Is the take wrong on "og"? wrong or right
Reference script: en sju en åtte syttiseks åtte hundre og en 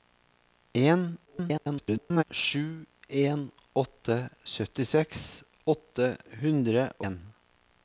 wrong